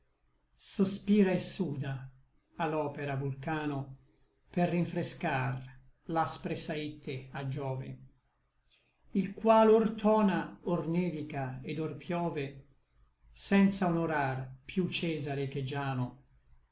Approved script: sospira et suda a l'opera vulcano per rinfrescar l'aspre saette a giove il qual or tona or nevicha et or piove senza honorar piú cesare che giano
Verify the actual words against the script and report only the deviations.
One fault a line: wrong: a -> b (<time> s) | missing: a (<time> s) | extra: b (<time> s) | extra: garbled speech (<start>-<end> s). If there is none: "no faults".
no faults